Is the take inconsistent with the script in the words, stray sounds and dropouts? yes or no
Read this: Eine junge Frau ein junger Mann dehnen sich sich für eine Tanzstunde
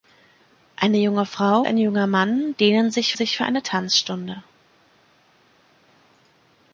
no